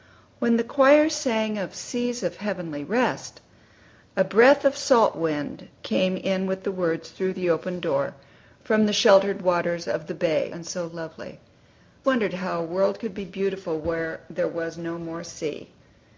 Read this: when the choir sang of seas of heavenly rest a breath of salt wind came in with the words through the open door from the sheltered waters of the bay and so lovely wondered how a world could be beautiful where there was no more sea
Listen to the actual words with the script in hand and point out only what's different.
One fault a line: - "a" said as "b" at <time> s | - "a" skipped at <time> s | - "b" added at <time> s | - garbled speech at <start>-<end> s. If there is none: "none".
none